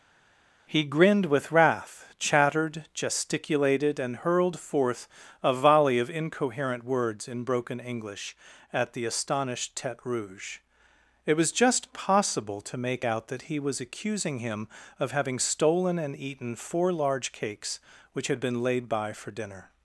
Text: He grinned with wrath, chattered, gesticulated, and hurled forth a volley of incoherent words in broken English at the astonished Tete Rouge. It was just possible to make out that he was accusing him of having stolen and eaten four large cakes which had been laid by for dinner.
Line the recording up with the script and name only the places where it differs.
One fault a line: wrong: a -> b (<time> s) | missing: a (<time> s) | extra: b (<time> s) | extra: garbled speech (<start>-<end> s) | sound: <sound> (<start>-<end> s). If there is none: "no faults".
no faults